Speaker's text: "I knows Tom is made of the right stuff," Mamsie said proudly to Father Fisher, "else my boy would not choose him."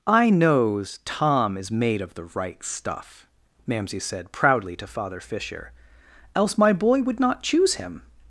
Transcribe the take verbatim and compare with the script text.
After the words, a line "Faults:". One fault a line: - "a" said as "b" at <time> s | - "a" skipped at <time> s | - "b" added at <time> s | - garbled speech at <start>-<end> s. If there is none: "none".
"I knows Tom is made of the right stuff," Mamsie said proudly to Father Fisher, "else my boy would not choose him."
Faults:
none